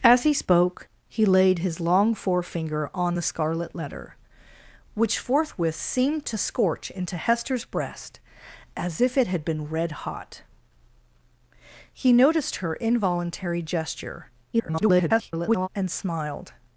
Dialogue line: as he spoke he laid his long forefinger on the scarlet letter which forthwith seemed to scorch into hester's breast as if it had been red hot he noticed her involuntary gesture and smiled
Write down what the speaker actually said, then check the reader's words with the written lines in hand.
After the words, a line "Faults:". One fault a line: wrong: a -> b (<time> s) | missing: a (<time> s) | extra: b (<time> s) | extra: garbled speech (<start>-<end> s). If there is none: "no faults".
as he spoke he laid his long forefinger on the scarlet letter which forthwith seemed to scorch into hester's breast as if it had been red hot he noticed her involuntary gesture [garbled] and smiled
Faults:
extra: garbled speech (14.5-15.7 s)